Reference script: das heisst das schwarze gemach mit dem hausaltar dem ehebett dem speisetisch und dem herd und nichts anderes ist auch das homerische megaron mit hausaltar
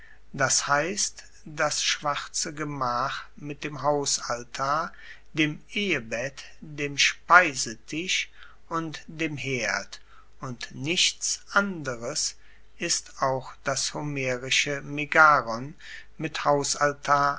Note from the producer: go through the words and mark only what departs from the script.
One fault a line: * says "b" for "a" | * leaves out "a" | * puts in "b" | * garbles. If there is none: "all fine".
all fine